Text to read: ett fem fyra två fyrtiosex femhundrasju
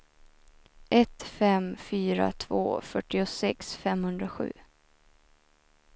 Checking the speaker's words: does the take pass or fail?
pass